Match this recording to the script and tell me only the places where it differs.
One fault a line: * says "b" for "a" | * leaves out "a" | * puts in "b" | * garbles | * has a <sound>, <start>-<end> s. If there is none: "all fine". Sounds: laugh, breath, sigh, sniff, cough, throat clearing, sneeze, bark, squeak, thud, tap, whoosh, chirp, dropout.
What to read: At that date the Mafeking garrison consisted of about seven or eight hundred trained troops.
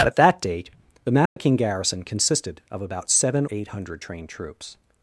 * has a dropout, 1.3-1.4 s
* leaves out "or"